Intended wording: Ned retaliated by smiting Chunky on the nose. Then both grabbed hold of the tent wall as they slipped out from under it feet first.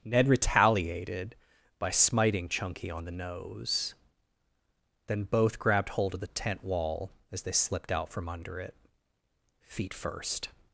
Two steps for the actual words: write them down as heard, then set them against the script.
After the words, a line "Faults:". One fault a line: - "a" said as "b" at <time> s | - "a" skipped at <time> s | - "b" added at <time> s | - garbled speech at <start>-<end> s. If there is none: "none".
Ned retaliated by smiting Chunky on the nose. Then both grabbed hold of the tent wall as they slipped out from under it feet first.
Faults:
none